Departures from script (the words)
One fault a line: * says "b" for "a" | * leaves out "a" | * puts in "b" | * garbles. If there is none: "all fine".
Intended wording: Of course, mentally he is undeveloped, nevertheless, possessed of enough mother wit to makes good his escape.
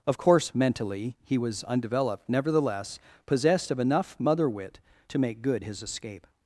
* says "was" for "is"
* says "make" for "makes"